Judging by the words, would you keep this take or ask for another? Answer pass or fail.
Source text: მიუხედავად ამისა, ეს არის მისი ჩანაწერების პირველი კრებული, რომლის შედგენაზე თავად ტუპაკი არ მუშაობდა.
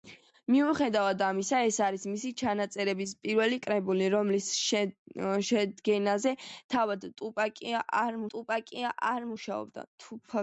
fail